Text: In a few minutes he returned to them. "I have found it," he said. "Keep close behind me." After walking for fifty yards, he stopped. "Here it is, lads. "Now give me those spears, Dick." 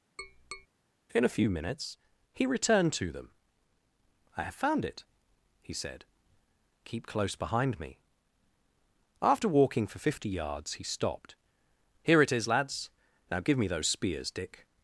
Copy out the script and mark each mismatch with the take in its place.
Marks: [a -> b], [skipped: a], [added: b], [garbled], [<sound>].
[tap] In a few minutes he returned to them. "I have found it," he said. "Keep close behind me." After walking for fifty yards, he stopped. "Here it is, lads. "Now give me those spears, Dick."